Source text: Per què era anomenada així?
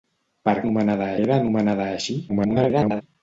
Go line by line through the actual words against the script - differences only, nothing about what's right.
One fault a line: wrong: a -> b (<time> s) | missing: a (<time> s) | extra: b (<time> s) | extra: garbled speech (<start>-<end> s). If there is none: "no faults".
wrong: què -> anomenada (0.6 s)
extra: garbled speech (2.3-3.0 s)